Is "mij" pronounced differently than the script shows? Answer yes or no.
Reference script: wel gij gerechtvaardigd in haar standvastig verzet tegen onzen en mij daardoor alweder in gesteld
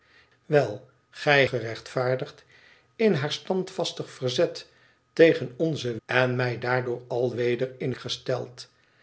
no